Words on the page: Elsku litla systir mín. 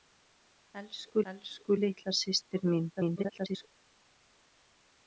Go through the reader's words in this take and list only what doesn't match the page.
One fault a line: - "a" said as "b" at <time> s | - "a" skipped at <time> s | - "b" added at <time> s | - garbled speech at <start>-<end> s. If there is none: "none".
- "elsku" added at 1.3 s
- garbled speech at 3.0-3.7 s